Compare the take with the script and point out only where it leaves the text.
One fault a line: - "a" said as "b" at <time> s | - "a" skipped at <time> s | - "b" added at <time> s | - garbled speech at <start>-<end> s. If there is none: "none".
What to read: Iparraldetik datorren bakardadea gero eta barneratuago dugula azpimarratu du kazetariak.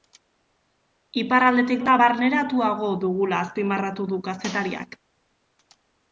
- "datorren bakardadea gero" skipped at 1.8 s